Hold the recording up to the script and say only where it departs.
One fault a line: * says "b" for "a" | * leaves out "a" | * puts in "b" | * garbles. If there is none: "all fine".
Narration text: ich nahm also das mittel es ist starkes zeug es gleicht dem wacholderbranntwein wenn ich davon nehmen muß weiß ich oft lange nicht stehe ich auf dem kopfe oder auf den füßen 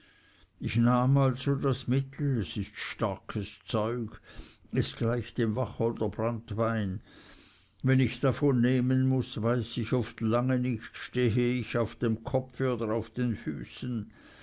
all fine